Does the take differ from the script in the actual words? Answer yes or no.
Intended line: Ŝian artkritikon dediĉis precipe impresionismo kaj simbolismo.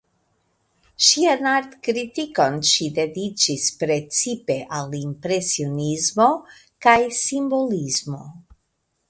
yes